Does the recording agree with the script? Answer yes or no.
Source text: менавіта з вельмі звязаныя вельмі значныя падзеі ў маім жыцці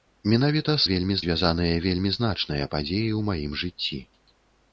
yes